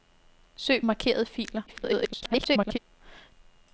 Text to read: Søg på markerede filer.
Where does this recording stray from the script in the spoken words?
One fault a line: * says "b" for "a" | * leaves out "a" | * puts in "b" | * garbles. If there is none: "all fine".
* leaves out "på"
* garbles